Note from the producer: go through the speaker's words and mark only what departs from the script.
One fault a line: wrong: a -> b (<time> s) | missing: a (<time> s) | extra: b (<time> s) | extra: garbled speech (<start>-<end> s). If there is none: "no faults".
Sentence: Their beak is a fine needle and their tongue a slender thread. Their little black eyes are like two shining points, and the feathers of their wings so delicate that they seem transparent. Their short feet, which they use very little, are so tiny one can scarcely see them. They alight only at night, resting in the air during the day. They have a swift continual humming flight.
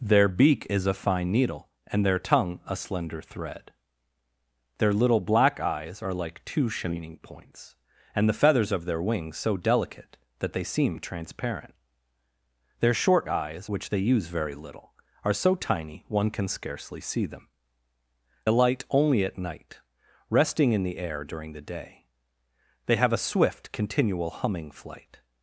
wrong: feet -> eyes (13.3 s)
missing: They (17.5 s)